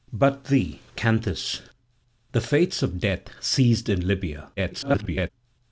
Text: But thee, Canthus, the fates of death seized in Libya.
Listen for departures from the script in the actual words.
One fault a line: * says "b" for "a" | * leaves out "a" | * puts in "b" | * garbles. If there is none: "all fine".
* garbles